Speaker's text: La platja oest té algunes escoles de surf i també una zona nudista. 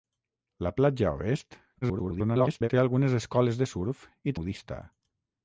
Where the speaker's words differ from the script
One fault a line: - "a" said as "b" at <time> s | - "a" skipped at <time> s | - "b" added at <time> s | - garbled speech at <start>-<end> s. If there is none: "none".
- garbled speech at 1.8-2.7 s
- "també una zona" skipped at 4.4 s